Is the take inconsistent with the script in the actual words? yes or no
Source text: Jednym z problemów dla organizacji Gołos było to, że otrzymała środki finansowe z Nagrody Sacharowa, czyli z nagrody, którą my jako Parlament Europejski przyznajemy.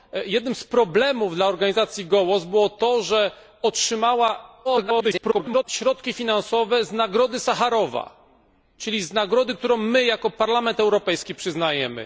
yes